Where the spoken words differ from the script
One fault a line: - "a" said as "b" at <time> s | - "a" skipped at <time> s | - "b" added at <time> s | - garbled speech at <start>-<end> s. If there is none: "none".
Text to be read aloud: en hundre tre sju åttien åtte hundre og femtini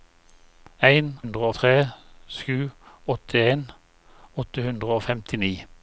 none